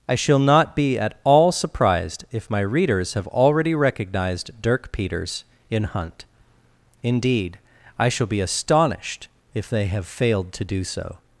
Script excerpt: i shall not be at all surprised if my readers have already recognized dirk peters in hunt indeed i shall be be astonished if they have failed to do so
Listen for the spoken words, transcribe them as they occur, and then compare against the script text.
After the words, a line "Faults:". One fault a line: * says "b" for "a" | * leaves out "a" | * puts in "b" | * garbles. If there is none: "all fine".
i shall not be at all surprised if my readers have already recognized dirk peters in hunt indeed i shall be astonished if they have failed to do so
Faults:
* leaves out "be"